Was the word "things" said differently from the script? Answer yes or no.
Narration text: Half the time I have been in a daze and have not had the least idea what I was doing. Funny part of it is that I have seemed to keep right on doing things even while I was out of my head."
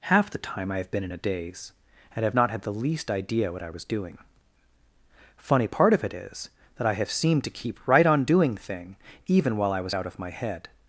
yes